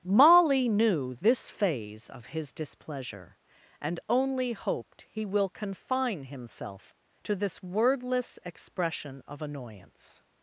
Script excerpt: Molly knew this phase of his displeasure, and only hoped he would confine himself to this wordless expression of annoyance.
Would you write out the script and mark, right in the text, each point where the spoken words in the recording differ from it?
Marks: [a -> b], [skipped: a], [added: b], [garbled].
Molly knew this phase of his displeasure, and only hoped he [would -> will] confine himself to this wordless expression of annoyance.